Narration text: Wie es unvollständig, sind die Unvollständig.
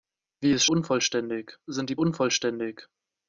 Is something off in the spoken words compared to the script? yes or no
no